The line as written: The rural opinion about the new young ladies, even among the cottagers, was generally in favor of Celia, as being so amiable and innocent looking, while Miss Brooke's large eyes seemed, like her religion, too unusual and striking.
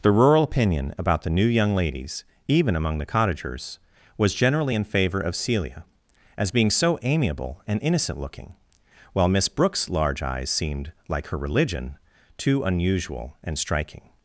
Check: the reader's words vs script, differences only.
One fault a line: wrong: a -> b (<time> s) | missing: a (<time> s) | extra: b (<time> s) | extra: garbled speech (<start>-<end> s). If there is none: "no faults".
no faults